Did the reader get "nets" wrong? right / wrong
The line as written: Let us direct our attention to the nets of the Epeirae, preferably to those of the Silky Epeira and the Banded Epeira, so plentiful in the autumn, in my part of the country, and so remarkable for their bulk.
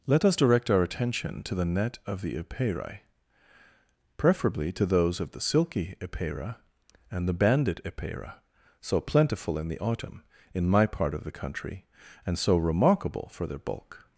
wrong